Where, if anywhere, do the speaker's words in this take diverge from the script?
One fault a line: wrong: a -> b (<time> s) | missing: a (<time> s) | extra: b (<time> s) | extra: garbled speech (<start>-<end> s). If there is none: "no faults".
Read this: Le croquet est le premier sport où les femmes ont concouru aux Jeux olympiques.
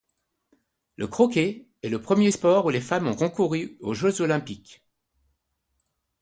no faults